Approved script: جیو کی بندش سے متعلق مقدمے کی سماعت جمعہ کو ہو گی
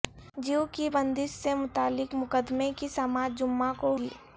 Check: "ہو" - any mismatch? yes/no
yes